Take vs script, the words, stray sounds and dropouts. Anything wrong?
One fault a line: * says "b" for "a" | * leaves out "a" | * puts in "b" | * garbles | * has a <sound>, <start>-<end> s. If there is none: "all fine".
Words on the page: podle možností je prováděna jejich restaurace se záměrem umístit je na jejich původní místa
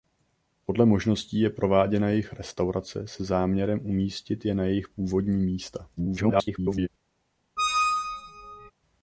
* garbles
* has a squeak, 7.6-8.7 s